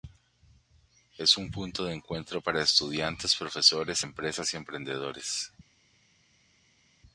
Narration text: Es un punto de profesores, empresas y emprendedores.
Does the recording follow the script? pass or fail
fail